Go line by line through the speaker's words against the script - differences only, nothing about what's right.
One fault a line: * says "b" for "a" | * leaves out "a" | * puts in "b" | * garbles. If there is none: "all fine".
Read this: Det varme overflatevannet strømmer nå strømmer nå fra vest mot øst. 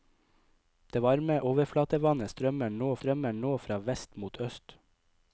all fine